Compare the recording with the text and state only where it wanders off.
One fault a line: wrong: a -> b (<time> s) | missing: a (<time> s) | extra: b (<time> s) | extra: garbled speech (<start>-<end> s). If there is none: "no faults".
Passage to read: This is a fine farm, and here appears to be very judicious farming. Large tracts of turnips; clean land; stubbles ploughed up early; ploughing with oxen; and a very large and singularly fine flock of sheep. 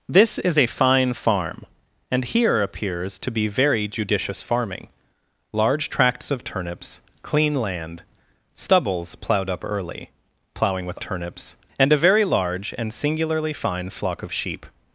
wrong: oxen -> turnips (11.0 s)